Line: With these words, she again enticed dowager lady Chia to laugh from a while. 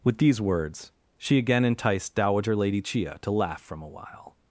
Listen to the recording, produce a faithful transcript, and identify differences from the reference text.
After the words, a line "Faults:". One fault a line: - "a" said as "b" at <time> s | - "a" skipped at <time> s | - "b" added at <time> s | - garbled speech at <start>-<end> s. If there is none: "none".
With these words, she again enticed dowager lady Chia to laugh from a while.
Faults:
none